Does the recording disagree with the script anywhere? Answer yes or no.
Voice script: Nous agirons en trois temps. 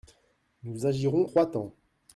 yes